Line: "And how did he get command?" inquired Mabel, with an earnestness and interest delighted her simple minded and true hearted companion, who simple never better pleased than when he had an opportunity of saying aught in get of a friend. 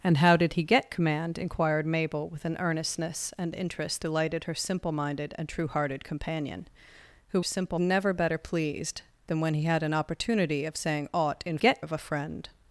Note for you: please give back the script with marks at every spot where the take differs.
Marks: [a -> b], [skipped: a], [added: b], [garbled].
"And how did he get command?" inquired Mabel, with an earnestness and interest delighted her simple minded and true hearted companion, who simple never better pleased than when he had an opportunity of saying aught in get of a friend.